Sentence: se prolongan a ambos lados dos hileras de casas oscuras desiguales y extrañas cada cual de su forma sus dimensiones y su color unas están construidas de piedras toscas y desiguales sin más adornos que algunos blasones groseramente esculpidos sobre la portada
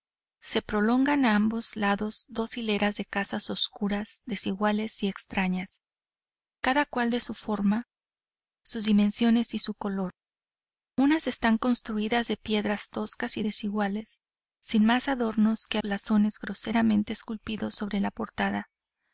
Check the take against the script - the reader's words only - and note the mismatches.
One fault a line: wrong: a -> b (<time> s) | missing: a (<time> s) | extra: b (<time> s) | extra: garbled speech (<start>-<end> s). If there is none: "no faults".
missing: algunos (15.8 s)